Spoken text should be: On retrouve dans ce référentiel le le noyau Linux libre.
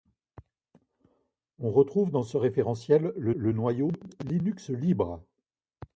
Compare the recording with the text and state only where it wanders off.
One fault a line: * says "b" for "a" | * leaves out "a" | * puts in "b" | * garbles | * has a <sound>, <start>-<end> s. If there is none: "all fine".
all fine